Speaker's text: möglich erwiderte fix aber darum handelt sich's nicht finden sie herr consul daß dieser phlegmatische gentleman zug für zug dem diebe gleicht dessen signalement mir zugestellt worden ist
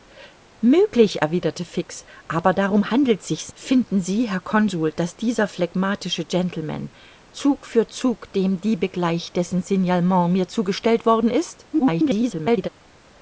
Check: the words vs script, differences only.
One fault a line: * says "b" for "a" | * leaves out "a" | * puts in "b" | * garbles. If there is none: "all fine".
* leaves out "nicht"
* garbles